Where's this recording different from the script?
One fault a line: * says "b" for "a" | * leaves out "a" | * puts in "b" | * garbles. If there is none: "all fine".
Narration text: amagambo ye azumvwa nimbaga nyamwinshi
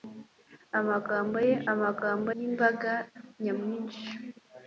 * says "amagambo" for "azumvwa"